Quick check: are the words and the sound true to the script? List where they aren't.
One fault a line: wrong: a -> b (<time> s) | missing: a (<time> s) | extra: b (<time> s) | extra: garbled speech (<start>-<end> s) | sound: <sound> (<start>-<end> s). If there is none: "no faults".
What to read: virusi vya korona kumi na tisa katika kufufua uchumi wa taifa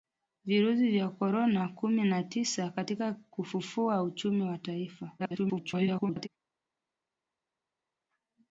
extra: garbled speech (5.2-6.3 s)